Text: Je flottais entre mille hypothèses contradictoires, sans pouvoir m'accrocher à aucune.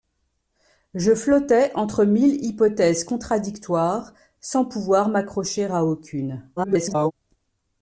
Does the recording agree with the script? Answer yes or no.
no